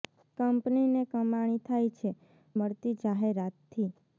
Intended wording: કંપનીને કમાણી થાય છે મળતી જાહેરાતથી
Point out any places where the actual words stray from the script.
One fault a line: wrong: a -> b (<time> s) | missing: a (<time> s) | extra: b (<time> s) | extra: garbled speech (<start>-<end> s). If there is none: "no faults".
no faults